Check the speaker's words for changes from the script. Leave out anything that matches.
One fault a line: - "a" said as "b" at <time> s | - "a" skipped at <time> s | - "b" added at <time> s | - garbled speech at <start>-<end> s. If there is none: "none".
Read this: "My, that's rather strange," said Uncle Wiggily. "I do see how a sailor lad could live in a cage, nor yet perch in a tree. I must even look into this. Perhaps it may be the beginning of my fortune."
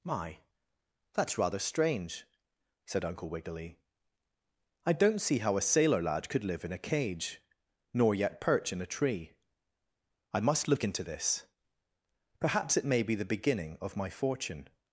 - "do" said as "don't" at 4.9 s
- "even" skipped at 10.7 s